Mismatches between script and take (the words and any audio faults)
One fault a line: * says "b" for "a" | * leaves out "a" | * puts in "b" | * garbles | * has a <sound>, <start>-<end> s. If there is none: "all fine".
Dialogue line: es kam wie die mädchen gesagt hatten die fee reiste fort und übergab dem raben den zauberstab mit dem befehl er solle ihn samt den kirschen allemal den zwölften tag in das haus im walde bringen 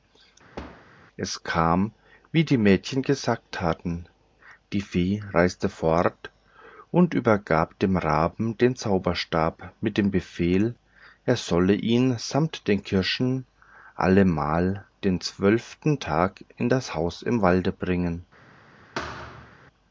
* has a thud, 0.6-0.9 s
* has a thud, 19.0-19.6 s